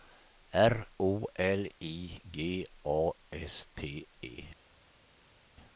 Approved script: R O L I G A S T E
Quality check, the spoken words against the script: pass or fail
pass